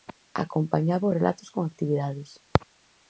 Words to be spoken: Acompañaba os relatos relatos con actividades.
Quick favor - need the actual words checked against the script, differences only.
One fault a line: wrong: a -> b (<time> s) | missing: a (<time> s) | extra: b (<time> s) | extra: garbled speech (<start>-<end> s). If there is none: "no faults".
missing: relatos (1.5 s)